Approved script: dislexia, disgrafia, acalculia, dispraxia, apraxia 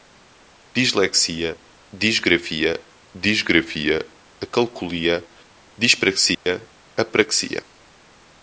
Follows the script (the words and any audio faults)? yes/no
no